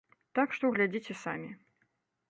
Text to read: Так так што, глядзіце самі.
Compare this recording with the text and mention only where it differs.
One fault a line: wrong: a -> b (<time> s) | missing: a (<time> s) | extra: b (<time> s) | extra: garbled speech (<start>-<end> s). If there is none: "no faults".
missing: так (0.6 s)